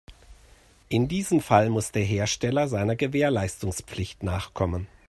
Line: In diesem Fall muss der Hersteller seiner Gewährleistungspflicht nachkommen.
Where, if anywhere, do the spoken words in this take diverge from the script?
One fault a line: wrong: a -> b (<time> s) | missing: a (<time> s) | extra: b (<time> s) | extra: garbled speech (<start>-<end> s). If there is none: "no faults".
no faults